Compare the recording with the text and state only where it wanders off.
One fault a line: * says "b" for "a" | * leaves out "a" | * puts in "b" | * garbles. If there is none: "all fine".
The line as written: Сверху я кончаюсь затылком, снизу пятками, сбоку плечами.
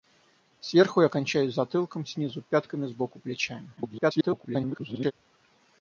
* garbles